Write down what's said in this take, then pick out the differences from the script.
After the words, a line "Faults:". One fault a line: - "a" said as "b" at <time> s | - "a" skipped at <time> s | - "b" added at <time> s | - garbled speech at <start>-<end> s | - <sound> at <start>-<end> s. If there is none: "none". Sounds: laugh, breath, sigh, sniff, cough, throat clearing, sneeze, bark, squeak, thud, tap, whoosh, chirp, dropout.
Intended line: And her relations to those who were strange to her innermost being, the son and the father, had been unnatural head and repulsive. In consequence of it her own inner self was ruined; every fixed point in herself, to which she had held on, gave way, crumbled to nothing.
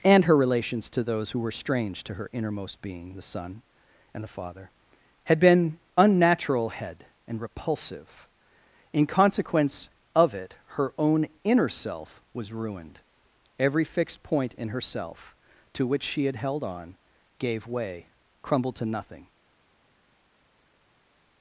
And her relations to those who were strange to her innermost being, the son and the father, had been unnatural head and repulsive. In consequence of it her own inner self was ruined; every fixed point in herself, to which she had held on, gave way, crumbled to nothing.
Faults:
none